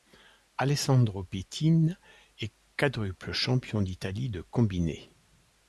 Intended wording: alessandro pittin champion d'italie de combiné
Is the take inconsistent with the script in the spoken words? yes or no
yes